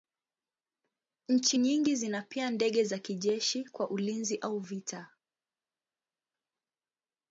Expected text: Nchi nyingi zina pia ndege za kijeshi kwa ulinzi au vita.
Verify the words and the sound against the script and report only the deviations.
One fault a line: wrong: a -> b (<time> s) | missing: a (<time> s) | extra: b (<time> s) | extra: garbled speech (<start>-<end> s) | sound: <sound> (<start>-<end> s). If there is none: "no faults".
no faults